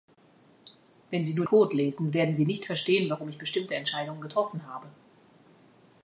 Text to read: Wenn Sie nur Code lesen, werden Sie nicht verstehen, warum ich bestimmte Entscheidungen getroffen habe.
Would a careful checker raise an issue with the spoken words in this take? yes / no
no